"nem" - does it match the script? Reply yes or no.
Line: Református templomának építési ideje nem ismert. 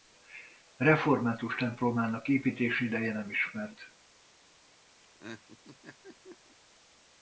yes